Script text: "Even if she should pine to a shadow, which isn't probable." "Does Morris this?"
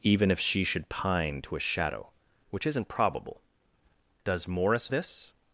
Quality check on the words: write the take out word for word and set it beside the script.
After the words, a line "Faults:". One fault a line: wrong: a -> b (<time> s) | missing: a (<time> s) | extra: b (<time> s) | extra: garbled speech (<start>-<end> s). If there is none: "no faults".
"Even if she should pine to a shadow, which isn't probable." "Does Morris this?"
Faults:
no faults